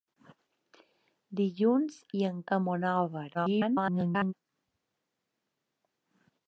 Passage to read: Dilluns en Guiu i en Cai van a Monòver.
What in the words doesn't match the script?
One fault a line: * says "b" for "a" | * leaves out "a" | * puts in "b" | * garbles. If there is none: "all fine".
* leaves out "en Guiu"
* leaves out "Cai van"
* garbles